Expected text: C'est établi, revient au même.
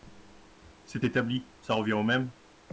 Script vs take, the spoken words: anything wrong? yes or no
yes